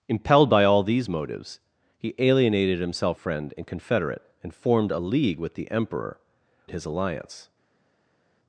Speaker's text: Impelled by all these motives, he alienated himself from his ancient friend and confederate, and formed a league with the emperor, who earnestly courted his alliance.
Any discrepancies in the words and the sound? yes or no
yes